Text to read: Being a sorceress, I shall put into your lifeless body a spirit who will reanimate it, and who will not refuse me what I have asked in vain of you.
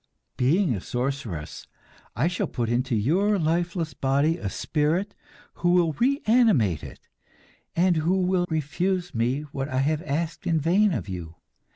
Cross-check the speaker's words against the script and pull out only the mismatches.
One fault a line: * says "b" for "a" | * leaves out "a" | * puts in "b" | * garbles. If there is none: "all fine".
* leaves out "not"